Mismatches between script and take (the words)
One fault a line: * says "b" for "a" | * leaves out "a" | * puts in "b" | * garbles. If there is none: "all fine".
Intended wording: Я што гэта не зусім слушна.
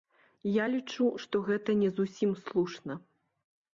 * puts in "лічу"